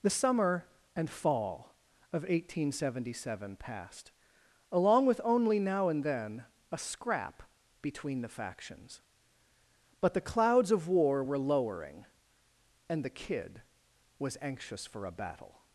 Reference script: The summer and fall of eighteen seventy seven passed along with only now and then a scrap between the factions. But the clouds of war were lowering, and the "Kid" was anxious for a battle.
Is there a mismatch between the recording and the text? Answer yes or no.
no